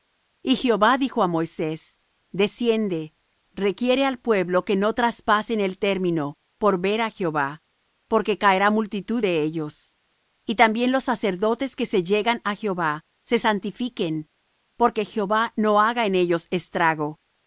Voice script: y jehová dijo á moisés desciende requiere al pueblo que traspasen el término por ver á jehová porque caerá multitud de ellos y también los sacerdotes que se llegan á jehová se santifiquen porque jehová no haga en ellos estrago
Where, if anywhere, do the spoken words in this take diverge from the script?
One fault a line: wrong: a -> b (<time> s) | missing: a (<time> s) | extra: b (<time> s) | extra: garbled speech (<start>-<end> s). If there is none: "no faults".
extra: no (4.8 s)